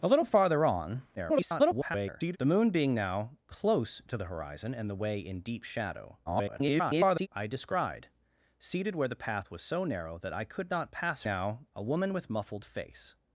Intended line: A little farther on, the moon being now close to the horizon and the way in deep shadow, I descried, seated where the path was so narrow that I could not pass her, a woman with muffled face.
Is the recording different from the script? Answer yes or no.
yes